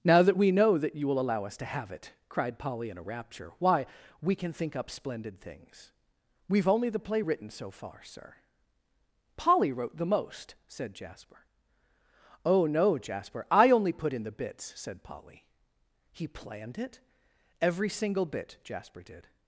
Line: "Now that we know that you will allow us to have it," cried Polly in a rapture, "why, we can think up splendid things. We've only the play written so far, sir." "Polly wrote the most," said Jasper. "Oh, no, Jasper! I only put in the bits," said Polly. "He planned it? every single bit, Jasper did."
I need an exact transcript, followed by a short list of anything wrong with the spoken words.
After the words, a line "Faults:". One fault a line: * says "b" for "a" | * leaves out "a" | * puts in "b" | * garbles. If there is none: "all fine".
"Now that we know that you will allow us to have it," cried Polly in a rapture, "why, we can think up splendid things. We've only the play written so far, sir." "Polly wrote the most," said Jasper. "Oh, no, Jasper! I only put in the bits," said Polly. "He planned it? every single bit, Jasper did."
Faults:
all fine